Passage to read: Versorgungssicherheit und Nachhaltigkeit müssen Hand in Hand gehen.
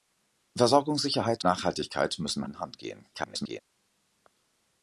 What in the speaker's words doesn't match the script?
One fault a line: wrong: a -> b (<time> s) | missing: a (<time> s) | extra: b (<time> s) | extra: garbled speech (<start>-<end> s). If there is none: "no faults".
missing: und (1.4 s)
missing: Hand (2.5 s)
extra: garbled speech (3.1-3.6 s)